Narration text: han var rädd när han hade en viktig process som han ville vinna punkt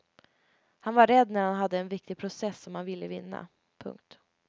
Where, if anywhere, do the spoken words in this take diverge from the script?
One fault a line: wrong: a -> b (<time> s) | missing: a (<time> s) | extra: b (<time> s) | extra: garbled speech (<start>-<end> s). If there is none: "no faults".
no faults